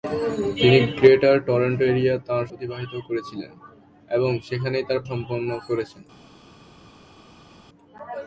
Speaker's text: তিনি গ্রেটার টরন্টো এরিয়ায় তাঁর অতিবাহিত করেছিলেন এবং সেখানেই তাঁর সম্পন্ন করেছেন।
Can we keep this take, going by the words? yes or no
yes